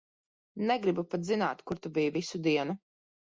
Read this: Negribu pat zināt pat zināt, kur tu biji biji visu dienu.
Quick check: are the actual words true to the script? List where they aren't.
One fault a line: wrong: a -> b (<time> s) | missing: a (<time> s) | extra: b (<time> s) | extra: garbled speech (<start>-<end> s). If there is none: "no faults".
missing: pat zināt (1.6 s)
missing: biji (2.1 s)